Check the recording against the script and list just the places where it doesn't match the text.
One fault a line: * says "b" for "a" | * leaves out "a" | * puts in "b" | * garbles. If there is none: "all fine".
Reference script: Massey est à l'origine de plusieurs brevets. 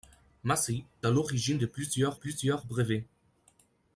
* leaves out "est"
* puts in "plusieurs"